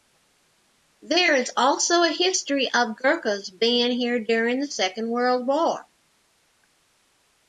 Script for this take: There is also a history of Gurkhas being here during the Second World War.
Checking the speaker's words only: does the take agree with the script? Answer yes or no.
yes